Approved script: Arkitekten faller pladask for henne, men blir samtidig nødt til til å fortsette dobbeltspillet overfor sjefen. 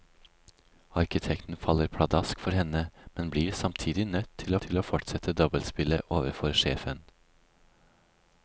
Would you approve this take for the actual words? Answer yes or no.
yes